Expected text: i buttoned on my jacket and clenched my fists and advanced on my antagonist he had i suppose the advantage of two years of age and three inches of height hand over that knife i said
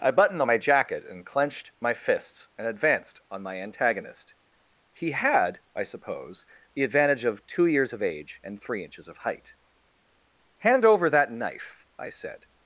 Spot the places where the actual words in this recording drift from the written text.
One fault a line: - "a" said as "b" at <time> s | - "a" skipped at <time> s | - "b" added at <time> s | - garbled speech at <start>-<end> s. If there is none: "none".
none